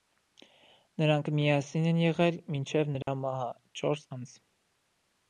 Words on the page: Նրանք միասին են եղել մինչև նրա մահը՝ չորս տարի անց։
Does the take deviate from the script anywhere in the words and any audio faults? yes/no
yes